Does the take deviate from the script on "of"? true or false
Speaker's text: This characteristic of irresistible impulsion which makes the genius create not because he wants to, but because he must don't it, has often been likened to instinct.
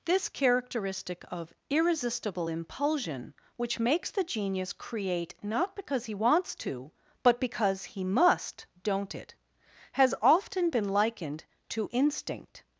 false